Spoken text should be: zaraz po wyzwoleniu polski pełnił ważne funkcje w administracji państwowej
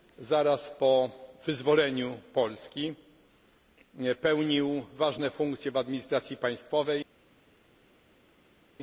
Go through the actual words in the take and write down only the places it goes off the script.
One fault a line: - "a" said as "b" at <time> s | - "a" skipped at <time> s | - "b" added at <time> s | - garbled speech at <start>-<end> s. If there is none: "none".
none